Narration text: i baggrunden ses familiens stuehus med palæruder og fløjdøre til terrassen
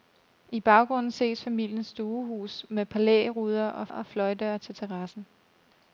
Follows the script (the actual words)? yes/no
no